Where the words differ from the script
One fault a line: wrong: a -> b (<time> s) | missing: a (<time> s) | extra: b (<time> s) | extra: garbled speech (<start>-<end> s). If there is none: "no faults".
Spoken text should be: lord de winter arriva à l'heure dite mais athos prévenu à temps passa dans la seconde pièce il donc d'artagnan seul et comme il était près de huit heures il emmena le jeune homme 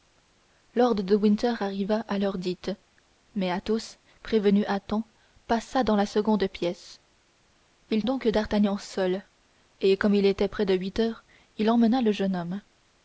no faults